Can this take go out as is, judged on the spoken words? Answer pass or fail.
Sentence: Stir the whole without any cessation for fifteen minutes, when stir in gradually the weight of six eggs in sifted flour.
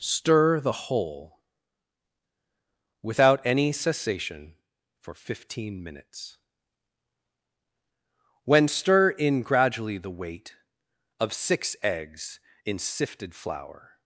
pass